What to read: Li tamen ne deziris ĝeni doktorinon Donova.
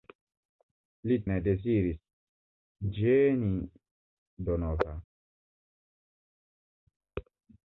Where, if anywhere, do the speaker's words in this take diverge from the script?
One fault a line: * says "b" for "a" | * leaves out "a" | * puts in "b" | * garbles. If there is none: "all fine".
* leaves out "tamen"
* leaves out "doktorinon"